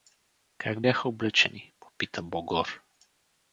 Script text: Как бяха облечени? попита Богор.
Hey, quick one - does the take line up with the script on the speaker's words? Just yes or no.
yes